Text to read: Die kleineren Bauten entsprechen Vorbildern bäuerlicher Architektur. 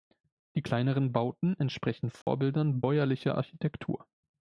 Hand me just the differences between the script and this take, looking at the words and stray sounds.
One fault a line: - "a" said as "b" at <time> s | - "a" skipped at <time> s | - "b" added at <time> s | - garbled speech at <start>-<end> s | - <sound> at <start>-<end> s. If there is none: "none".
- dropout at 2.2-2.3 s